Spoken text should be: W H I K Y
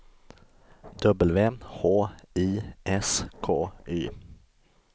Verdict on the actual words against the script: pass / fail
fail